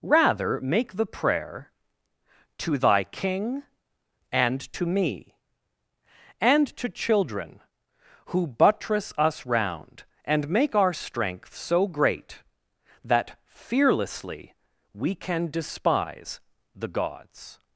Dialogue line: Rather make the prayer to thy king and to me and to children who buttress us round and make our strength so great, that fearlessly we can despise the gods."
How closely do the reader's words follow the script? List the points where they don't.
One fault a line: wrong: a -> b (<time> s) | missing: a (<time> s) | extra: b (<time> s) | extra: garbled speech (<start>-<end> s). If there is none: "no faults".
no faults